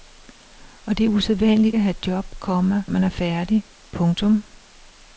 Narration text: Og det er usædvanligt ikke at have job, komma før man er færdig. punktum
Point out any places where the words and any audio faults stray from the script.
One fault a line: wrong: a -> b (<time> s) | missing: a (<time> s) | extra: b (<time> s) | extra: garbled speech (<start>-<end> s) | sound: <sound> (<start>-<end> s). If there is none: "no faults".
missing: ikke (1.8 s)
missing: før (2.8 s)